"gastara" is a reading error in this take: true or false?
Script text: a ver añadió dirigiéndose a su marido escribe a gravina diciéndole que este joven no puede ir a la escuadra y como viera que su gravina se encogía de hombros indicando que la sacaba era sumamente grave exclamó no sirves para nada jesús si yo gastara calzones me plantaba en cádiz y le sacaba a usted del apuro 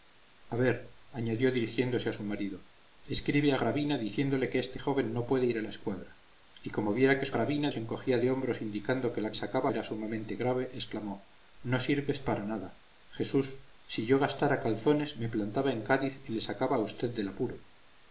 false